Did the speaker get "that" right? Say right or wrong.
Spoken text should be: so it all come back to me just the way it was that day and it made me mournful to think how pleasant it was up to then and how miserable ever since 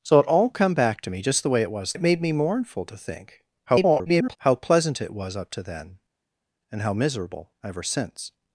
wrong